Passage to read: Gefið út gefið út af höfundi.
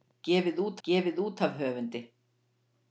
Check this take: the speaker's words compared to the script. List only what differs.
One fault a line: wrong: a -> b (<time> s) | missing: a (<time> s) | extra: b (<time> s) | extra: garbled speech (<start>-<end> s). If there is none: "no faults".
no faults